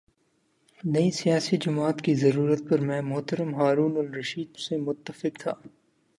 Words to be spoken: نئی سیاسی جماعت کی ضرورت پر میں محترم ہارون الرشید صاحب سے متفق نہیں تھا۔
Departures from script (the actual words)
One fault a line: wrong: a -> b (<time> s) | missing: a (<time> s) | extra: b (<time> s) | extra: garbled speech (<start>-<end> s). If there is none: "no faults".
missing: صاحب (4.6 s)
missing: نہیں (5.4 s)